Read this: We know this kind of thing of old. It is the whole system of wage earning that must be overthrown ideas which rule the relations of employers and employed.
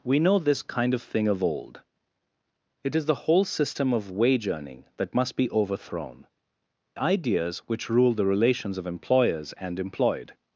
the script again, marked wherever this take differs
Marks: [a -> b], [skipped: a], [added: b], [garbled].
We know this kind of thing of old. It is the whole system of wage earning that must be overthrown ideas which rule the relations of employers and employed.